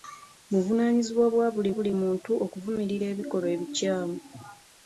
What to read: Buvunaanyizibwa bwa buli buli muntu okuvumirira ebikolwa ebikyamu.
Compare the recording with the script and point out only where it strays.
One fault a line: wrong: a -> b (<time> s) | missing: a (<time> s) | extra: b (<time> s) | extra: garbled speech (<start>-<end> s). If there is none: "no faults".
no faults